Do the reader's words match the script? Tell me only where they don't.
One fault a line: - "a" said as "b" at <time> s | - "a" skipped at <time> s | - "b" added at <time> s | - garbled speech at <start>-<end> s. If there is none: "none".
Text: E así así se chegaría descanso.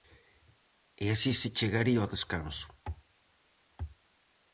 - "así" skipped at 1.3 s
- "ao" added at 2.0 s